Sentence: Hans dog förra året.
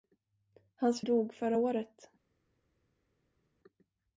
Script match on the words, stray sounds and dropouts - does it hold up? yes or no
yes